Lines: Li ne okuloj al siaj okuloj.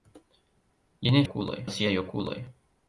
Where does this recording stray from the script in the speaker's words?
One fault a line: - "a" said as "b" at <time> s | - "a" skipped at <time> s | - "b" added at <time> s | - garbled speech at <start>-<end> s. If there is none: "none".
none